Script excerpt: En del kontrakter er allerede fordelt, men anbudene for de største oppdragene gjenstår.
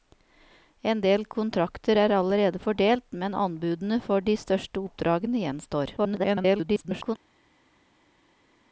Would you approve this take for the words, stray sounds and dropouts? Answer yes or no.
no